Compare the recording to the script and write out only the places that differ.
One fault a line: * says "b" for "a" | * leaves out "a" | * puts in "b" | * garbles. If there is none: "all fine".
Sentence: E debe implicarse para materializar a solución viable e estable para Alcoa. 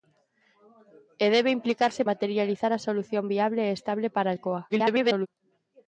* leaves out "para"
* garbles